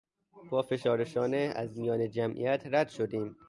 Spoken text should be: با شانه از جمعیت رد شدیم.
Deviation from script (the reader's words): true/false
true